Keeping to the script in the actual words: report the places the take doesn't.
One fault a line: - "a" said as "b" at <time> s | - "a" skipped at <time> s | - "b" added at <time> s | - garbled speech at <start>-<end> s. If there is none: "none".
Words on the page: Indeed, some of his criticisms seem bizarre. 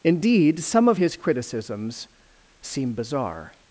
none